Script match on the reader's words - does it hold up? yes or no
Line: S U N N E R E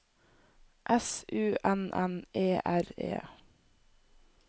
yes